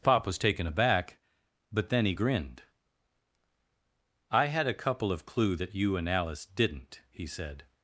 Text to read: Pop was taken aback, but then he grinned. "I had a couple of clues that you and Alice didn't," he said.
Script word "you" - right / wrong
right